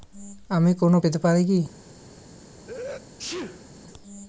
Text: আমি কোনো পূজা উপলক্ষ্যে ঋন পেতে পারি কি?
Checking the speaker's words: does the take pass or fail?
fail